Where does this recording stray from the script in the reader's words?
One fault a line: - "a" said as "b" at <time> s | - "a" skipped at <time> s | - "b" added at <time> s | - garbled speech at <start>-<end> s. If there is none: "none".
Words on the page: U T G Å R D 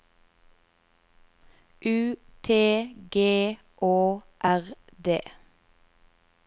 none